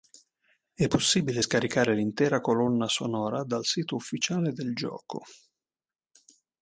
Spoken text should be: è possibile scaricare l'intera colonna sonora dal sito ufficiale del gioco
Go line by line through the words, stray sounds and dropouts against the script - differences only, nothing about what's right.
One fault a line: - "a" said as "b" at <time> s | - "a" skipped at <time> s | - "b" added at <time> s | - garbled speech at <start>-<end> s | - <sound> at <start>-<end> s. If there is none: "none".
none